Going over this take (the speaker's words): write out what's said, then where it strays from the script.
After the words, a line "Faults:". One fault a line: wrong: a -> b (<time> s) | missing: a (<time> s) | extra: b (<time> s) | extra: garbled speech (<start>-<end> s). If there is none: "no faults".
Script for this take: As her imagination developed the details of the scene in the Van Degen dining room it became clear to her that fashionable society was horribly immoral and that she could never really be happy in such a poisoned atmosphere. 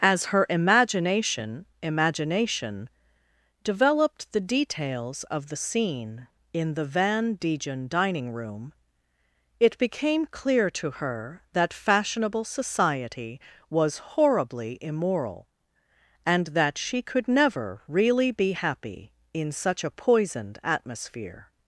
As her imagination imagination developed the details of the scene in the Van Degen dining room it became clear to her that fashionable society was horribly immoral and that she could never really be happy in such a poisoned atmosphere.
Faults:
extra: imagination (1.8 s)